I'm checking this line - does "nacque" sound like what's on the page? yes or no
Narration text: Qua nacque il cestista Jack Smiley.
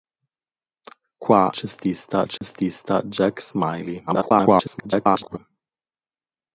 no